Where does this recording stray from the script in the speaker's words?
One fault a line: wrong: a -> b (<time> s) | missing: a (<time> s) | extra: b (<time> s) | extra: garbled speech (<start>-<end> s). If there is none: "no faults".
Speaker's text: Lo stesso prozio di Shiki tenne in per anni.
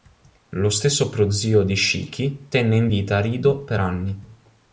extra: vita Rido (2.9 s)